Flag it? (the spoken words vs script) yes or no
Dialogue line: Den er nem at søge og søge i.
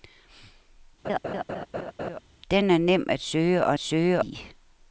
no